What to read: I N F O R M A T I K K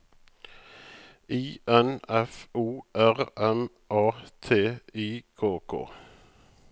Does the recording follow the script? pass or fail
pass